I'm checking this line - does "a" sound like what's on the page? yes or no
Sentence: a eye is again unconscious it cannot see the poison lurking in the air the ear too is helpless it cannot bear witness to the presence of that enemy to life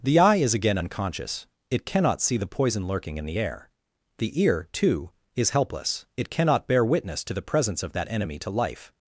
no